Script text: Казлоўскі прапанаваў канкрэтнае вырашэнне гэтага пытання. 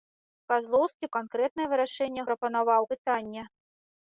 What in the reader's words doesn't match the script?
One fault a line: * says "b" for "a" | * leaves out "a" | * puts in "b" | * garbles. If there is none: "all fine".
* leaves out "прапанаваў"
* says "прапанаваў" for "гэтага"